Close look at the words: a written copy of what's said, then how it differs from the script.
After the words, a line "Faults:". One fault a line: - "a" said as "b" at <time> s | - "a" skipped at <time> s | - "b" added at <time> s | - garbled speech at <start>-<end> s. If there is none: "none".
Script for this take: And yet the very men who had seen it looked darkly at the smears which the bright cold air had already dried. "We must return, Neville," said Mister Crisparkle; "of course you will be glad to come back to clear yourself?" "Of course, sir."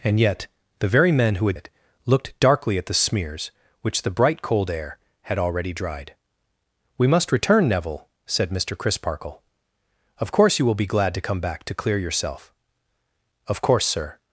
And yet the very men who had it looked darkly at the smears which the bright cold air had already dried. "We must return, Neville," said Mister Crisparkle; "of course you will be glad to come back to clear yourself?" "Of course, sir."
Faults:
- "seen" skipped at 1.6 s